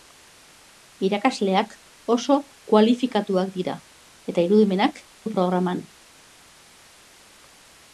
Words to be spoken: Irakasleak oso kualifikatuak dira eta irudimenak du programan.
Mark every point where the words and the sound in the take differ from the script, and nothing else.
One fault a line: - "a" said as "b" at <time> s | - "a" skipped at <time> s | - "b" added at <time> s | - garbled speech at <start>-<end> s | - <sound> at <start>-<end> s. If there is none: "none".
none